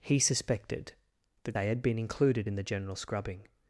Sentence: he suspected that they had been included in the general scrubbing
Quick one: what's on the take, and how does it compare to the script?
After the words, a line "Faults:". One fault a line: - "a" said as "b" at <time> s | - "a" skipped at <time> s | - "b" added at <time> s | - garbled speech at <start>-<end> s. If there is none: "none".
he suspected that they had been included in the general scrubbing
Faults:
none